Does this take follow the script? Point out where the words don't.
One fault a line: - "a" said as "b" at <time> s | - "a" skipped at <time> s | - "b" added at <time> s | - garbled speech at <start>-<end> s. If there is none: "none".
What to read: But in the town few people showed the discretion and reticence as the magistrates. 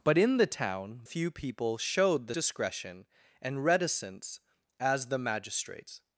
none